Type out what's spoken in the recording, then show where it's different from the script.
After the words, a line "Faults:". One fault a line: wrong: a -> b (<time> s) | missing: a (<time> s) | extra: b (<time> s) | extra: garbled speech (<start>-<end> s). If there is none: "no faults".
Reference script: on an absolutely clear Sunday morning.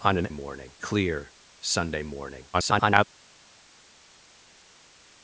on an morning clear Sunday morning. [garbled]
Faults:
wrong: absolutely -> morning (0.3 s)
extra: garbled speech (2.5-3.0 s)